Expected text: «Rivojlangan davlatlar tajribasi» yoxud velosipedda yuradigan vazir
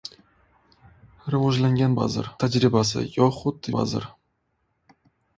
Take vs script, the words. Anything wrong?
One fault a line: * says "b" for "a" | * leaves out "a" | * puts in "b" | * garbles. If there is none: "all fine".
* says "vazir" for "davlatlar"
* leaves out "velosipedda yuradigan"